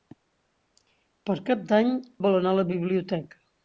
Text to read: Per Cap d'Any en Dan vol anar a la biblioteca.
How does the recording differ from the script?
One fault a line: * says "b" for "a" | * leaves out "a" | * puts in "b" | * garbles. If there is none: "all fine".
* leaves out "en Dan"